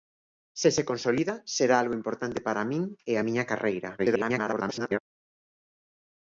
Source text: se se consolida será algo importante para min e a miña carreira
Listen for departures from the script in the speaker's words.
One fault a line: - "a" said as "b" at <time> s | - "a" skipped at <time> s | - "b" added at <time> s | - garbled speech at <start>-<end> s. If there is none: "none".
- garbled speech at 4.0-5.0 s